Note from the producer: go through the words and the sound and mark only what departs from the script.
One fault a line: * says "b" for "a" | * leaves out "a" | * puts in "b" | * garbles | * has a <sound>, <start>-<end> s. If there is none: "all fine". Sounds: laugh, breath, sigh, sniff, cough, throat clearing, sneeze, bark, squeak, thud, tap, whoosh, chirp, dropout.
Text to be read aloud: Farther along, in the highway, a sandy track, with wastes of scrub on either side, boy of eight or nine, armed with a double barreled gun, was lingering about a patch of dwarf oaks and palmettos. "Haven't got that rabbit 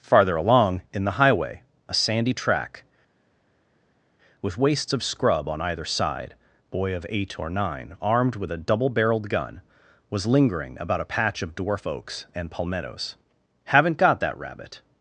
all fine